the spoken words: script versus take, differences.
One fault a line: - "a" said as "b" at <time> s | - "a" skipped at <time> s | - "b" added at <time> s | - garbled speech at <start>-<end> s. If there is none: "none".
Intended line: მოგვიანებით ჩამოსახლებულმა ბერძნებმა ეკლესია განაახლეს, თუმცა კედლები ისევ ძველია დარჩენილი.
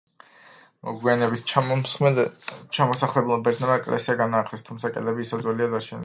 none